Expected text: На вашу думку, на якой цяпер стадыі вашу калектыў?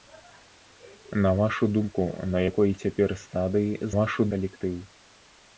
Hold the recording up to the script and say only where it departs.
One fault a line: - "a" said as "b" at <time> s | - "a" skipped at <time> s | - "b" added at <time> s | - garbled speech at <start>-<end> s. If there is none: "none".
none